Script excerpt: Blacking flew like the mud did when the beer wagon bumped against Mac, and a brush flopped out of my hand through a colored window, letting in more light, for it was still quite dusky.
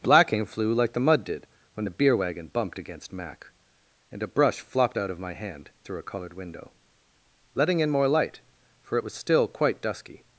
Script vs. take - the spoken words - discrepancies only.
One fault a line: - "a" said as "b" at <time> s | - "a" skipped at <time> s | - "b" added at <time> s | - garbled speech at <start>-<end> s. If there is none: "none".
none